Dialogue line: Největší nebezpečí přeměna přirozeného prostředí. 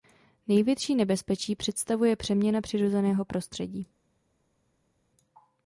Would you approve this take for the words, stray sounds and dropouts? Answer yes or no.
no